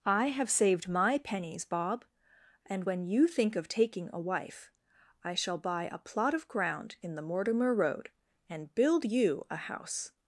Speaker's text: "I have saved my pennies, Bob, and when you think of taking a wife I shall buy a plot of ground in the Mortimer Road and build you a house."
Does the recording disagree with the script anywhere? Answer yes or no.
no